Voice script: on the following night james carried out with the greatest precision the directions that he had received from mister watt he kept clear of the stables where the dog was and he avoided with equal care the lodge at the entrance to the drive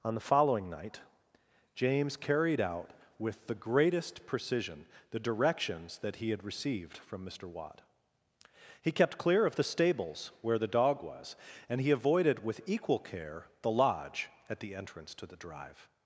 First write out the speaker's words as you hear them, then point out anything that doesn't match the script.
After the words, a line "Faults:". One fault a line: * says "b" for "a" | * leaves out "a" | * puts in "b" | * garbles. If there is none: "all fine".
on the following night james carried out with the greatest precision the directions that he had received from mister watt he kept clear of the stables where the dog was and he avoided with equal care the lodge at the entrance to the drive
Faults:
all fine